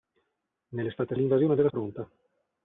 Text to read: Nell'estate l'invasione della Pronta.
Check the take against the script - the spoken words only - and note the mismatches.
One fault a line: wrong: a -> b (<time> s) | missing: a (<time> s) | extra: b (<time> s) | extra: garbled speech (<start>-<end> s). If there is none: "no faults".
no faults